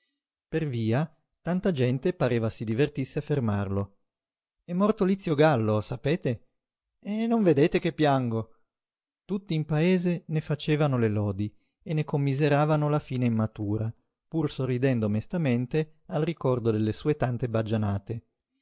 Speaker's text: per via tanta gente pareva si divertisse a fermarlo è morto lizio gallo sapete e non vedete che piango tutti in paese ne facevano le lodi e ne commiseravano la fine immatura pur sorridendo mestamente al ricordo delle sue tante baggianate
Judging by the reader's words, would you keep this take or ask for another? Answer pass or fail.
pass